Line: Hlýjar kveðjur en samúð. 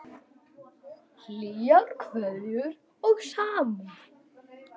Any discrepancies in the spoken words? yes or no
yes